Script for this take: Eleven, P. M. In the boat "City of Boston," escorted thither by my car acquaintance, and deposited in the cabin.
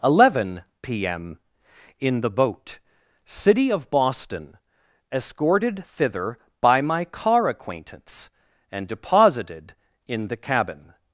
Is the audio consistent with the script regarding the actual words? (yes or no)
yes